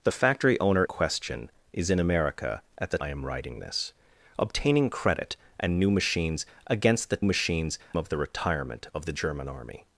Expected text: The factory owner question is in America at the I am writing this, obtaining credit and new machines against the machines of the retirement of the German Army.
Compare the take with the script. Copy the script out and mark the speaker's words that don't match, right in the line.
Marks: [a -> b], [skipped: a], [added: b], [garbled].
The factory owner question is in America at the I am writing this, obtaining credit and new machines against the machines of the retirement of the German Army.